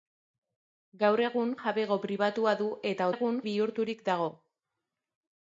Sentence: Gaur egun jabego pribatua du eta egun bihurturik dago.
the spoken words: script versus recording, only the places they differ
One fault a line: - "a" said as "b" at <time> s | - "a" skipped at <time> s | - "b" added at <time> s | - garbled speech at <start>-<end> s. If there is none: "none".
none